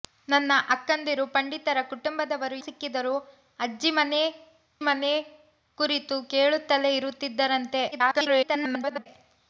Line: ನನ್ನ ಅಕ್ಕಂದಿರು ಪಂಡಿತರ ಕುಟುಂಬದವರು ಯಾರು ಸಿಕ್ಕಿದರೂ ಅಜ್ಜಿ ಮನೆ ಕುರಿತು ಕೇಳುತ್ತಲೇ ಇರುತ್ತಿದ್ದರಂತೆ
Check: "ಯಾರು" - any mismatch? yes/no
yes